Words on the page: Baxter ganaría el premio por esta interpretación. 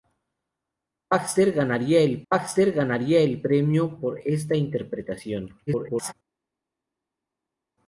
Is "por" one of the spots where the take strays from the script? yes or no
no